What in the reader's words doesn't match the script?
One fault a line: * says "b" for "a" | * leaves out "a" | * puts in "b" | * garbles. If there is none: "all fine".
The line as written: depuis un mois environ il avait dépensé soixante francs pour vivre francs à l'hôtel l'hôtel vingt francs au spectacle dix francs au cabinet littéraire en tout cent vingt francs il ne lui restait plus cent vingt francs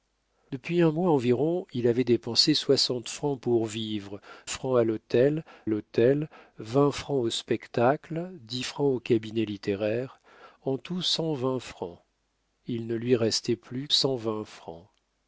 all fine